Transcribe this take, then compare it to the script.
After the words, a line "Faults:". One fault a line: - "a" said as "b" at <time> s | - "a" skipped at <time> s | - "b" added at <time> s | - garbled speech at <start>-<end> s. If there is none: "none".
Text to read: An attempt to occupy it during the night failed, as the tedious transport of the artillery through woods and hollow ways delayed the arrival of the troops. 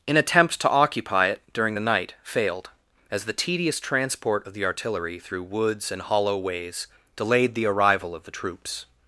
An attempt to occupy it during the night failed, as the tedious transport of the artillery through woods and hollow ways delayed the arrival of the troops.
Faults:
none